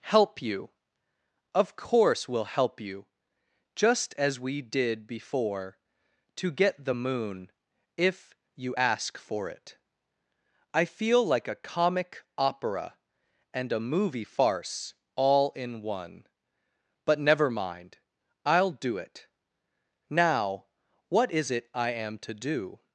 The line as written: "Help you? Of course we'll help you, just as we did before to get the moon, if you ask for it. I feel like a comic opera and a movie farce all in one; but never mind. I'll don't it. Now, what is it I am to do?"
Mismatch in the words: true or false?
true